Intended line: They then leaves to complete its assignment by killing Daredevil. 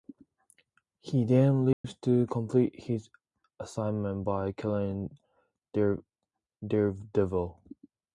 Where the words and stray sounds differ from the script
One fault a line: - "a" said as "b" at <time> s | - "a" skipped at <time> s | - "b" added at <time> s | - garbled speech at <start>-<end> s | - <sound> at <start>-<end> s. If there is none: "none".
- "They" said as "He" at 1.0 s
- dropout at 1.7-1.8 s
- "its" said as "his" at 2.8 s